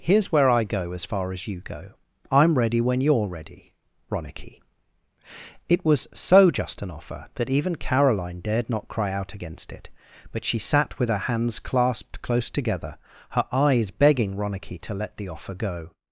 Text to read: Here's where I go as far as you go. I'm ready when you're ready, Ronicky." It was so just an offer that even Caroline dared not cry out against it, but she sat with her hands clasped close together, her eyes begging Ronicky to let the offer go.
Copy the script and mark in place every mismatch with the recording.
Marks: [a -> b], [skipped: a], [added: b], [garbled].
Here's where I go as far as you go. I'm ready when you're ready, Ronicky." It was so just an offer that even Caroline dared not cry out against it, but she sat with her hands clasped close together, her eyes begging Ronicky to let the offer go.